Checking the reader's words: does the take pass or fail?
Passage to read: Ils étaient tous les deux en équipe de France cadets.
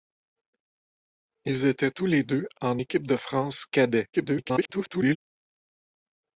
fail